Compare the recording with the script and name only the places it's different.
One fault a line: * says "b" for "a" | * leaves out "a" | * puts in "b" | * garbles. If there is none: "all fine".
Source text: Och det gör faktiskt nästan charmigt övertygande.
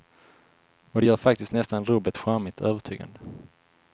* puts in "rubbet"